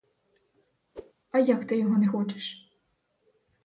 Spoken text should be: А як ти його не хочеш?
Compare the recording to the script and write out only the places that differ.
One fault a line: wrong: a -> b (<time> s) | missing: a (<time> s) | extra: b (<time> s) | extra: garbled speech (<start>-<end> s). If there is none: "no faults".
no faults